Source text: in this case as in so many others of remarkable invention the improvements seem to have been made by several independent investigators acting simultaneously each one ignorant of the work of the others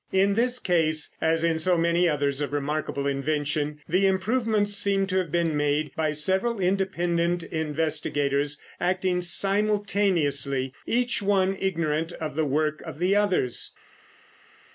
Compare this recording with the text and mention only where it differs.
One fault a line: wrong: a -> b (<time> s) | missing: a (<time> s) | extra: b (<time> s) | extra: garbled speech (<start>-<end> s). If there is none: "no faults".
no faults